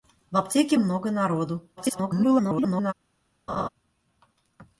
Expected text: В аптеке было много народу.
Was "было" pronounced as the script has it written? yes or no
no